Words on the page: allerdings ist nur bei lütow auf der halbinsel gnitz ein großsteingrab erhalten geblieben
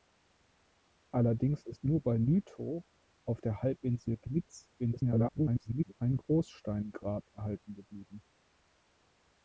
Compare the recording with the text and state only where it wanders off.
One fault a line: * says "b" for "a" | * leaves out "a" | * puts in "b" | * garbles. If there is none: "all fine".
* garbles